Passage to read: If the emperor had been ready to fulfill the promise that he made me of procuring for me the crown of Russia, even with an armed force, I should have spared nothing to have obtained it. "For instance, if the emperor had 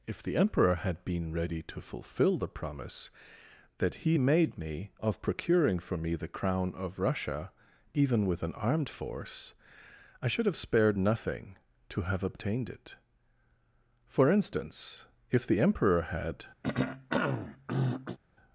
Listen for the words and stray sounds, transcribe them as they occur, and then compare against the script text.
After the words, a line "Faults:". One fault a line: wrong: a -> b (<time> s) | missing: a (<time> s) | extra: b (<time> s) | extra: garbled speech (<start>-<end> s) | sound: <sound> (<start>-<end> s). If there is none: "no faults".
If the emperor had been ready to fulfill the promise that he made me of procuring for me the crown of Russia, even with an armed force, I should have spared nothing to have obtained it. "For instance, if the emperor had
Faults:
sound: throat clearing (16.6-18.2 s)